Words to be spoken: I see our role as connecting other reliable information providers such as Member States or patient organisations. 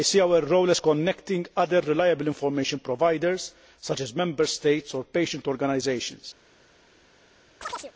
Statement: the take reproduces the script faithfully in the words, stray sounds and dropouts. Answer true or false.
false